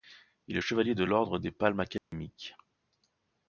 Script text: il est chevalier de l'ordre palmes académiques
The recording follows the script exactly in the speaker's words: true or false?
false